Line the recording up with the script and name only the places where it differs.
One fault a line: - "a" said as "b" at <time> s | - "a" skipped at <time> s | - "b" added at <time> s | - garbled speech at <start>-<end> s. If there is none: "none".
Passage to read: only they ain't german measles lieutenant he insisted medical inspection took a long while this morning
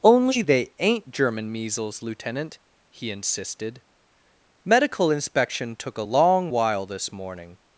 none